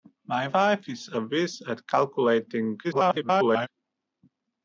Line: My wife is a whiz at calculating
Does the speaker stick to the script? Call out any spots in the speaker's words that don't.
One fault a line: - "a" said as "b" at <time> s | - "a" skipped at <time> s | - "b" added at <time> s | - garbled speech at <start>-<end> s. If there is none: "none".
- garbled speech at 2.8-3.7 s